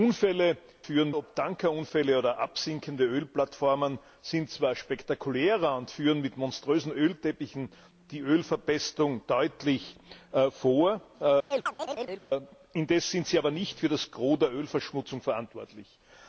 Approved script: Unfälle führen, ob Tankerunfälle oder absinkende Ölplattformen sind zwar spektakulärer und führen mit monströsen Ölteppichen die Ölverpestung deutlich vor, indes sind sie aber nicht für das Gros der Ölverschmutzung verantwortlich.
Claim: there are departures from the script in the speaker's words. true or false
false